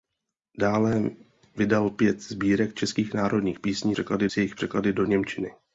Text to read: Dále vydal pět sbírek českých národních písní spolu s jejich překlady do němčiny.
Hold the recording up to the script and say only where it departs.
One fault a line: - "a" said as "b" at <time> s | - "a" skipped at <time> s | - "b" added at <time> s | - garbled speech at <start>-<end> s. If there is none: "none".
- "spolu" said as "překlady" at 3.9 s